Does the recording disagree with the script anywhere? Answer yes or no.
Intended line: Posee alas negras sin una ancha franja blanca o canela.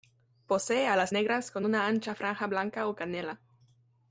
yes